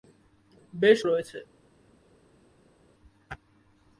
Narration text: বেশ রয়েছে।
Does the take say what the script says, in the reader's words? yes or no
yes